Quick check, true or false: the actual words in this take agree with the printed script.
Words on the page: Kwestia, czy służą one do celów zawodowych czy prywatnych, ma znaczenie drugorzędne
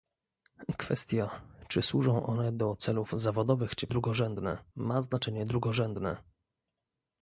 false